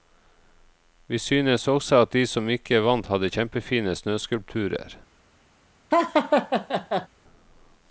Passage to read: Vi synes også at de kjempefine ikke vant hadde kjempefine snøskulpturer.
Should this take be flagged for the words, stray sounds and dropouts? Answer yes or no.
yes